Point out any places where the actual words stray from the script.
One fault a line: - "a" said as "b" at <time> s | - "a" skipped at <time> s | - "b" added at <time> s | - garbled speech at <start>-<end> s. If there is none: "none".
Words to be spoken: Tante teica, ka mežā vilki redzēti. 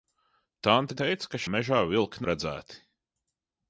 none